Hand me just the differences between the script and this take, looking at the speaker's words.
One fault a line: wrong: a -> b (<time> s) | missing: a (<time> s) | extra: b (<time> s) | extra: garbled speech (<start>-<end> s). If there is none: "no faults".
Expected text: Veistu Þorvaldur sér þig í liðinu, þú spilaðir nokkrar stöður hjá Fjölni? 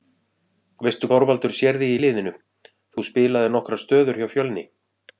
no faults